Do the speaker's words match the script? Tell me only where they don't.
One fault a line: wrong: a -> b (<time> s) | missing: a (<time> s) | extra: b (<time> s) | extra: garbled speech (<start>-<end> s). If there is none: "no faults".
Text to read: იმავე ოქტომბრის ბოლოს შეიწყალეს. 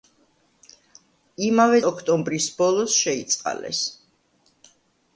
no faults